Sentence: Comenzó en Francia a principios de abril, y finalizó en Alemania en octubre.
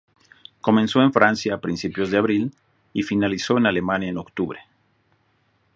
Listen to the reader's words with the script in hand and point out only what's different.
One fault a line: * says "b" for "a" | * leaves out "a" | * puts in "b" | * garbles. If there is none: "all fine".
all fine